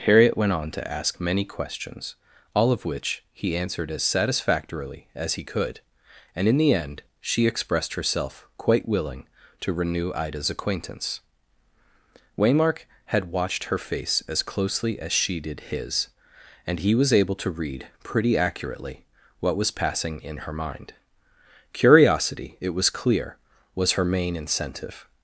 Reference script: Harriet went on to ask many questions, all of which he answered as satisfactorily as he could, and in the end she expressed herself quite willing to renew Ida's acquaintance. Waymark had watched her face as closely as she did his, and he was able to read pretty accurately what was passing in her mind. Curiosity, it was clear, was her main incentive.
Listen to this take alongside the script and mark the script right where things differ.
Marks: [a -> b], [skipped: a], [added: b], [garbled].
Harriet went on to ask many questions, all of which he answered as satisfactorily as he could, and in the end she expressed herself quite willing to renew Ida's acquaintance. Waymark had watched her face as closely as she did his, and he was able to read pretty accurately what was passing in her mind. Curiosity, it was clear, was her main incentive.